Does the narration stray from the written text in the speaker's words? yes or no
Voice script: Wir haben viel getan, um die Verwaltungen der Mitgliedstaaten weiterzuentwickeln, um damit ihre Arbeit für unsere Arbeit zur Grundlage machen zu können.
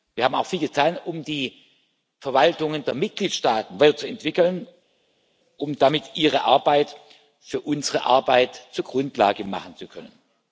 yes